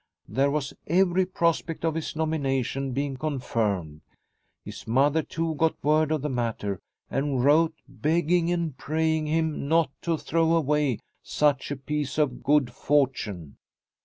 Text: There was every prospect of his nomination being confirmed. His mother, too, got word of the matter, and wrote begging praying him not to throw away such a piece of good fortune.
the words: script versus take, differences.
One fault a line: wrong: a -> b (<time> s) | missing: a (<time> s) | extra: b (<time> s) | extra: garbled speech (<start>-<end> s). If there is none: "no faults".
extra: and (8.5 s)